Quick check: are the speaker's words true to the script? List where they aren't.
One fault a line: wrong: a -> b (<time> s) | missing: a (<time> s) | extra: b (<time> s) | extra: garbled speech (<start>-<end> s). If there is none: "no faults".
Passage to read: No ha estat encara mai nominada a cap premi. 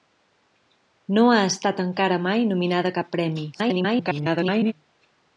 extra: garbled speech (3.5-4.7 s)